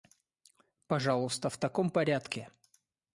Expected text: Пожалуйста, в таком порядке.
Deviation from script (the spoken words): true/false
false